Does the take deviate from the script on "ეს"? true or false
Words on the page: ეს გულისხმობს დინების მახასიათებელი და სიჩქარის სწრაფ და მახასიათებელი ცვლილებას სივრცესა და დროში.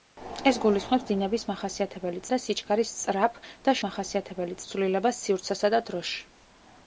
false